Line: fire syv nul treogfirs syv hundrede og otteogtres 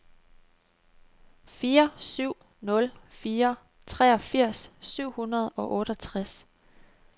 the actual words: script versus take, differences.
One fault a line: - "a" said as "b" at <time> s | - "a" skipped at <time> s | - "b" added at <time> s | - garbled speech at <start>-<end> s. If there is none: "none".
- "fire" added at 3.1 s